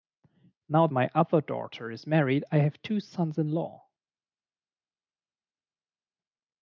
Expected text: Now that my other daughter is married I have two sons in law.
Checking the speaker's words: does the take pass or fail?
fail